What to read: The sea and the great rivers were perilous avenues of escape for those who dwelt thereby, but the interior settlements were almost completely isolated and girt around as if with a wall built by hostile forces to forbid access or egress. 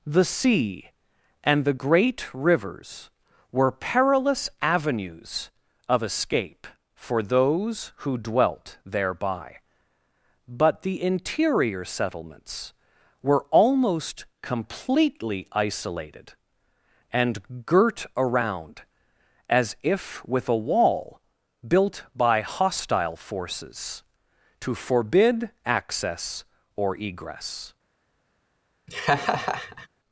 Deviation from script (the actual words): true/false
false